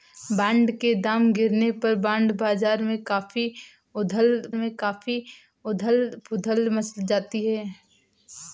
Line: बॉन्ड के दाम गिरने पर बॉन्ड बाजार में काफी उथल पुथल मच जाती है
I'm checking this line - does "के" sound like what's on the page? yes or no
yes